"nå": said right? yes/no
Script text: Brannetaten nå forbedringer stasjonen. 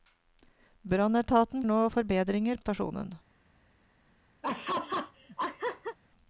yes